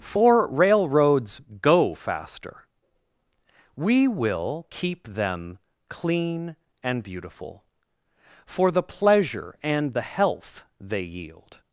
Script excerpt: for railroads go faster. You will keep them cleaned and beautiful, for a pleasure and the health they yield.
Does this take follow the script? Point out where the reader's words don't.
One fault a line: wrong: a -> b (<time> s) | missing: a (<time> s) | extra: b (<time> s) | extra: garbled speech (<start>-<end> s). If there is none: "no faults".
wrong: You -> We (3.8 s)
wrong: cleaned -> clean (5.9 s)
wrong: a -> the (8.7 s)